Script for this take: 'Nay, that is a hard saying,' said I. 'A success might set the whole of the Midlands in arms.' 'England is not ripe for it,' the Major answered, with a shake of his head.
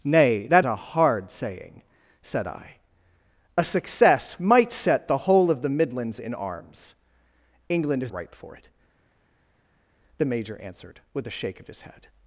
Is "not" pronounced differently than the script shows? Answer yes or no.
yes